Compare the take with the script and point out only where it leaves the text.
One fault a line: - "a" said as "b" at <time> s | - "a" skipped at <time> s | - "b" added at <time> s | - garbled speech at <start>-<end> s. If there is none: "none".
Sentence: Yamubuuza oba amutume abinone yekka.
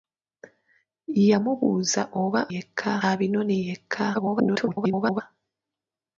- "amutume" said as "yekka" at 2.5 s
- garbled speech at 4.1-5.2 s